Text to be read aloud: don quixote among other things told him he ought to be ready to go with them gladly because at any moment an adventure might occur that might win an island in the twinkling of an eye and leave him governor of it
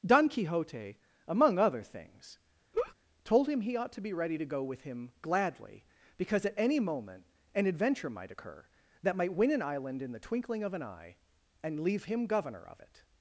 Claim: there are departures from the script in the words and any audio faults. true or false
true